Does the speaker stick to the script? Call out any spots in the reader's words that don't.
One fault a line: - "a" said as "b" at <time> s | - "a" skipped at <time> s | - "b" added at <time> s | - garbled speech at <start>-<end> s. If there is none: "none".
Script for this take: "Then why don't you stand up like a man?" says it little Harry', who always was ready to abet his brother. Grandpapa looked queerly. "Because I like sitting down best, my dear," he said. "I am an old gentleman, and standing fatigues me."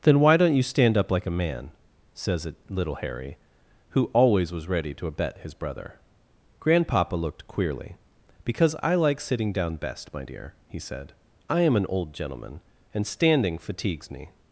none